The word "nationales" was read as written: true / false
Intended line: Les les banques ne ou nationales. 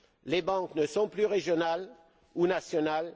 true